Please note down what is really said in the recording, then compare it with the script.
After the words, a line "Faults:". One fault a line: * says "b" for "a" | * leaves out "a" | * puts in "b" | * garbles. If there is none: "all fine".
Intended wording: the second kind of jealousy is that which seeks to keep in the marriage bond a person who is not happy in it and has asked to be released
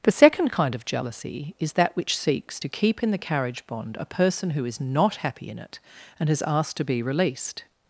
the second kind of jealousy is that which seeks to keep in the carriage bond a person who is not happy in it and has asked to be released
Faults:
* says "carriage" for "marriage"